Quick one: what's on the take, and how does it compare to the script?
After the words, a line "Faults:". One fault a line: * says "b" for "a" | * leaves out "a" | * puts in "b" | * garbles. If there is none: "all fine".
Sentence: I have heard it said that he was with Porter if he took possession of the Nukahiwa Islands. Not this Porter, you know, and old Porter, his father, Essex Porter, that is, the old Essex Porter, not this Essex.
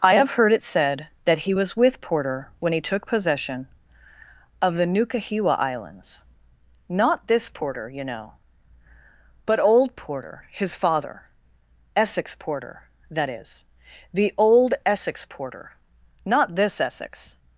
I have heard it said that he was with Porter when he took possession of the Nukahiwa Islands. Not this Porter, you know, but old Porter, his father, Essex Porter, that is, the old Essex Porter, not this Essex.
Faults:
* says "when" for "if"
* says "but" for "and"